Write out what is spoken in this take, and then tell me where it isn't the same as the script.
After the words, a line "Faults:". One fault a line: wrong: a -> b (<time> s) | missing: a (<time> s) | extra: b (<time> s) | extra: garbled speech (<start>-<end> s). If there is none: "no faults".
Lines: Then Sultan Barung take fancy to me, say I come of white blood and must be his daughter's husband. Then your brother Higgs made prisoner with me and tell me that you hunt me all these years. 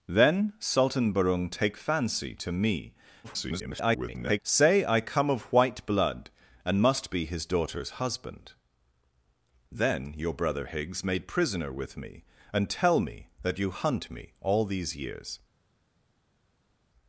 Then Sultan Barung take fancy to me, [garbled] say I come of white blood and must be his daughter's husband. Then your brother Higgs made prisoner with me and tell me that you hunt me all these years.
Faults:
extra: garbled speech (3.2-4.4 s)